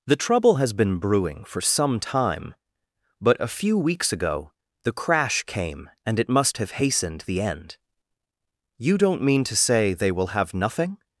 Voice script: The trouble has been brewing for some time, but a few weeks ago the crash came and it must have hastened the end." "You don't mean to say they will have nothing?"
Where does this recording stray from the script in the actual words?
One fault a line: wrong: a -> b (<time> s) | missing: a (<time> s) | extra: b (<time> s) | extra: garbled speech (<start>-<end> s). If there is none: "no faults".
no faults